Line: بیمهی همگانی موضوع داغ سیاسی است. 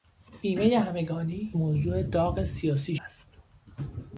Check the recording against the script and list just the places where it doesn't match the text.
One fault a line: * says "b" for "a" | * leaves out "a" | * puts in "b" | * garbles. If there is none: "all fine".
all fine